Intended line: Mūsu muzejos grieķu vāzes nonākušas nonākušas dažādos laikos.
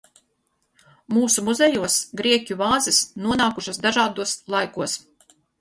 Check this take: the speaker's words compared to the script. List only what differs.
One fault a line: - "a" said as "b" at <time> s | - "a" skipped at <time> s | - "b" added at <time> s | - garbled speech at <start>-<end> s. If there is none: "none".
- "nonākušas" skipped at 3.8 s